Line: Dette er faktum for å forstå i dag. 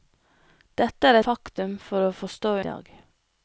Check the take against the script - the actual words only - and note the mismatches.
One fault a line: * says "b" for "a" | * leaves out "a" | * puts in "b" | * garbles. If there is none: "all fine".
all fine